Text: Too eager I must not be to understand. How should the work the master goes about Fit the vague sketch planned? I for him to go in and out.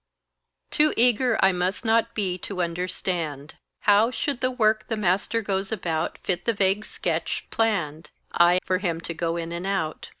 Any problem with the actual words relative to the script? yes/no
no